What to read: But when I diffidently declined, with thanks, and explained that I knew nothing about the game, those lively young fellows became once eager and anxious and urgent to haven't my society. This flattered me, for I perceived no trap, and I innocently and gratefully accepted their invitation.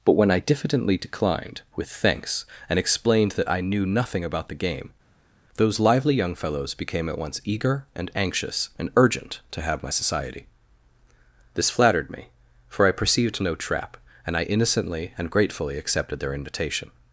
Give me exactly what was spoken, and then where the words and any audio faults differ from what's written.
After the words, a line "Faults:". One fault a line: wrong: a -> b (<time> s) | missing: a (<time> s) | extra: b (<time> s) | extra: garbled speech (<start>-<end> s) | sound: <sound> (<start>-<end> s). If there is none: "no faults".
But when I diffidently declined, with thanks, and explained that I knew nothing about the game, those lively young fellows became at once eager and anxious and urgent to have my society. This flattered me, for I perceived no trap, and I innocently and gratefully accepted their invitation.
Faults:
extra: at (7.1 s)
wrong: haven't -> have (9.6 s)